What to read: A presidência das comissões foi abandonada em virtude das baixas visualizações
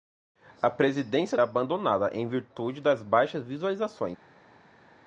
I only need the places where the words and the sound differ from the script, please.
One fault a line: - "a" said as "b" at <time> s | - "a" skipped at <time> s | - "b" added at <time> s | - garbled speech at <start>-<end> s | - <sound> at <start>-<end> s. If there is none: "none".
- "das comissões foi" skipped at 1.4 s